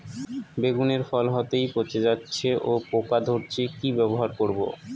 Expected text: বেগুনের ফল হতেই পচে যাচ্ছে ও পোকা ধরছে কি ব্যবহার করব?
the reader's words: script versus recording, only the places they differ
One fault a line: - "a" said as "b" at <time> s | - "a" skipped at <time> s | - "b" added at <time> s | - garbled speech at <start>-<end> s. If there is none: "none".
none